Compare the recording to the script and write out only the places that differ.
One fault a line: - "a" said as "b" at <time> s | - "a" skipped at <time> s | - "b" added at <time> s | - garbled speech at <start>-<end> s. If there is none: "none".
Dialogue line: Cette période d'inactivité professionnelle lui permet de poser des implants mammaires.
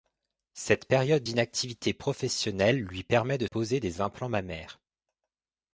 none